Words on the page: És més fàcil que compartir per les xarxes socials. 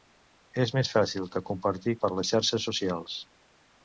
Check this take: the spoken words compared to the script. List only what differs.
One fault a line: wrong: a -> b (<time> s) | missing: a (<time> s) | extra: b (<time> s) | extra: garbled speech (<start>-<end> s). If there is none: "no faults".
no faults